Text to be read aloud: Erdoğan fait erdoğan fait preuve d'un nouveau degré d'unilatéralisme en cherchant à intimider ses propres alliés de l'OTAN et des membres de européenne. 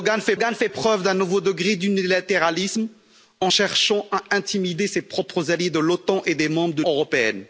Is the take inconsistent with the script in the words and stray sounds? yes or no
no